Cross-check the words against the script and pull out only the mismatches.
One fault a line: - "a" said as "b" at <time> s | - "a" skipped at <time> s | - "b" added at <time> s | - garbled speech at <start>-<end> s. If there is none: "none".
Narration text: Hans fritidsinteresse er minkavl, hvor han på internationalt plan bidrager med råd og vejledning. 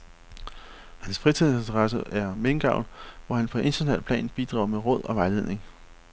none